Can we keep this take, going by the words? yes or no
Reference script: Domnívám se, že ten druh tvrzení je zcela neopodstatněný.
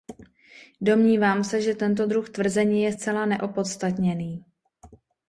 no